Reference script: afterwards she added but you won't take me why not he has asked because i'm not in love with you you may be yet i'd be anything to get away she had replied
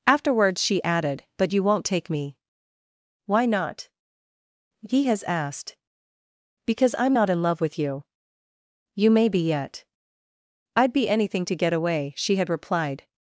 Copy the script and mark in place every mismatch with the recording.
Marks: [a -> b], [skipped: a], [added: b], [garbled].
afterwards she added but you won't take me why not he has asked because i'm not in love with you you may be yet i'd be anything to get away she had replied